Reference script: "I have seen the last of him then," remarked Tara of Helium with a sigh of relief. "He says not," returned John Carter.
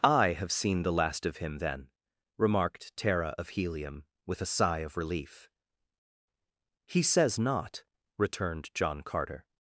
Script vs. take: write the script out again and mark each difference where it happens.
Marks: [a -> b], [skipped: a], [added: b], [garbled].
"I have seen the last of him then," remarked Tara of Helium with a sigh of relief. "He says not," returned John Carter.